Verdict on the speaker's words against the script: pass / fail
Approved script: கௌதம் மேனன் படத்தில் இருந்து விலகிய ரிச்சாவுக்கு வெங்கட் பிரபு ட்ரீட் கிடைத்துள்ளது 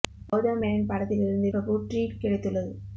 fail